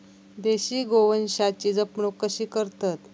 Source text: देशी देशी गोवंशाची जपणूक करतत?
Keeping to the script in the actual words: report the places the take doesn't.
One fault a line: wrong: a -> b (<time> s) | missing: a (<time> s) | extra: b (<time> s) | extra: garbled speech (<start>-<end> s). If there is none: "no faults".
missing: देशी (0.8 s)
extra: कशी (2.2 s)